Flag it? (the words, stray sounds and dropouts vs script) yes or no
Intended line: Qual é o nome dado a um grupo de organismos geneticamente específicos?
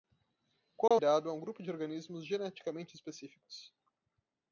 yes